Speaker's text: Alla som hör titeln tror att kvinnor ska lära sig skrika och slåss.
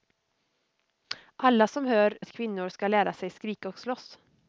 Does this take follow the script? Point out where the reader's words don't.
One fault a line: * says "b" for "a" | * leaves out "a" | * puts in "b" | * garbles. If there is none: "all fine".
* leaves out "titeln tror"